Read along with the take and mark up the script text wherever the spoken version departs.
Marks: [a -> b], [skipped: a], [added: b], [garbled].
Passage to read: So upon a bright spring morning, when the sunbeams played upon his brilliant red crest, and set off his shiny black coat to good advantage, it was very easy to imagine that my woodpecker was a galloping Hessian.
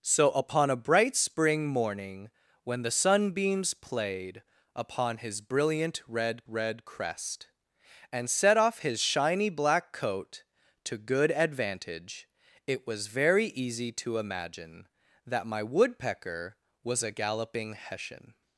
So upon a bright spring morning, when the sunbeams played upon his brilliant red [added: red] crest, and set off his shiny black coat to good advantage, it was very easy to imagine that my woodpecker was a galloping Hessian.